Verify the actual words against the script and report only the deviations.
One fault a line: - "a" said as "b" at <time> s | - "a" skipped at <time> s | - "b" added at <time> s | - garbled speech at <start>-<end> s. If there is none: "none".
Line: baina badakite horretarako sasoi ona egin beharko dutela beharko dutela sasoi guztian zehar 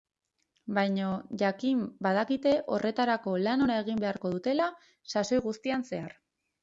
- "jakin" added at 1.4 s
- "sasoi" said as "lan" at 3.4 s
- "beharko dutela" skipped at 4.7 s